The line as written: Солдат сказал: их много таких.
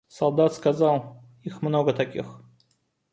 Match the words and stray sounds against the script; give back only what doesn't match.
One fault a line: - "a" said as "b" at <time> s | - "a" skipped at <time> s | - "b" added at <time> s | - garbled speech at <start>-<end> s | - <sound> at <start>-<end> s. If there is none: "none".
none